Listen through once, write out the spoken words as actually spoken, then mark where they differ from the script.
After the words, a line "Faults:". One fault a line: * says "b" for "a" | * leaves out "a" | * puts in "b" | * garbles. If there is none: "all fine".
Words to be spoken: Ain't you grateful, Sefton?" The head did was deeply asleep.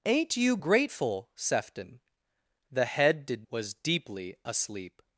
Ain't you grateful, Sefton?" The head did was deeply asleep.
Faults:
all fine